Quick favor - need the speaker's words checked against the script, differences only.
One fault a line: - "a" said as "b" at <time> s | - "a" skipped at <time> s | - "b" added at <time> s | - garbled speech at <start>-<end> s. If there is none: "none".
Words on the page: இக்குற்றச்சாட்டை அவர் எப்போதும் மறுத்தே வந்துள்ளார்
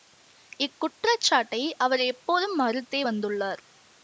none